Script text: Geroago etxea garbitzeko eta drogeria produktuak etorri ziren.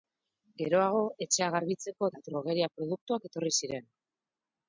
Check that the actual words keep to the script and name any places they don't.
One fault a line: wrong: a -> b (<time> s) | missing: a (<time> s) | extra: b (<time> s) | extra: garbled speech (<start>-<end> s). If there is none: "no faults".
no faults